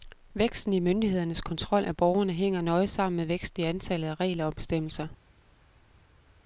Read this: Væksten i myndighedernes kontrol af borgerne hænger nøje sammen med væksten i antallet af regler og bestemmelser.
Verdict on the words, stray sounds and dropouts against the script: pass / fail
pass